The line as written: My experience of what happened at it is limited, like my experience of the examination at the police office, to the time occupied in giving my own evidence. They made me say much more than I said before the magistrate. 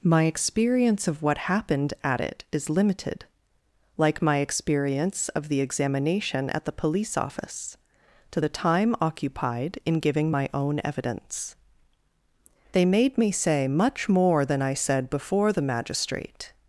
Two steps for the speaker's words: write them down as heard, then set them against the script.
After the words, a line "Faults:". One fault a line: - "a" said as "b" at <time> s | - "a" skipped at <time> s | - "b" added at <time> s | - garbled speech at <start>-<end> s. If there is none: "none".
My experience of what happened at it is limited, like my experience of the examination at the police office, to the time occupied in giving my own evidence. They made me say much more than I said before the magistrate.
Faults:
none